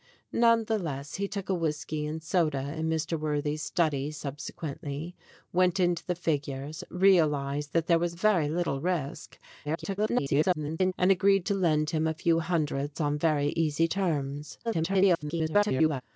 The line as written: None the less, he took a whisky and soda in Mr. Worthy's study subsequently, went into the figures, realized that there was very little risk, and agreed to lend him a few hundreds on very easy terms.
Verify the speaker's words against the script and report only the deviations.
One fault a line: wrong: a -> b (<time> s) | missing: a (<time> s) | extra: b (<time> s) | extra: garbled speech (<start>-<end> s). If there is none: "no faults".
extra: garbled speech (9.6-10.9 s)
extra: garbled speech (14.6-16.0 s)